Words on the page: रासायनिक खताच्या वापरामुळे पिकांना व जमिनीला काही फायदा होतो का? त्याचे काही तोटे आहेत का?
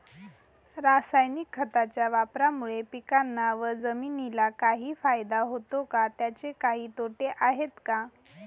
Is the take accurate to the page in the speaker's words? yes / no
yes